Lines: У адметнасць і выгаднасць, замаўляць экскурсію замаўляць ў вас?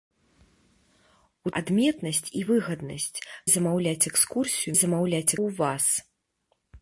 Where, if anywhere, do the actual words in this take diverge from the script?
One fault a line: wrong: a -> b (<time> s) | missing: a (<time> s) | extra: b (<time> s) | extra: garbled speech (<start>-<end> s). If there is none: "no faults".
no faults